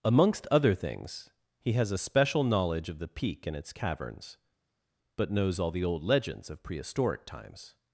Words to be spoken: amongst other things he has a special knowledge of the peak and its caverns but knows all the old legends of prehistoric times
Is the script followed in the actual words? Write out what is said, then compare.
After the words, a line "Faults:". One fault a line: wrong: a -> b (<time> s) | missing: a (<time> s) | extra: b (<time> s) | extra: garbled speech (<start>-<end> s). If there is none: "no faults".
amongst other things he has a special knowledge of the peak and its caverns but knows all the old legends of prehistoric times
Faults:
no faults